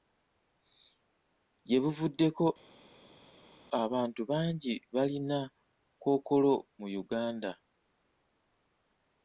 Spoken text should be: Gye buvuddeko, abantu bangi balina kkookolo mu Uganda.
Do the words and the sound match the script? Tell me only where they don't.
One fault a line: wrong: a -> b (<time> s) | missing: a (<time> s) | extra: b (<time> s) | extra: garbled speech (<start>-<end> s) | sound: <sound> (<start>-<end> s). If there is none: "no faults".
no faults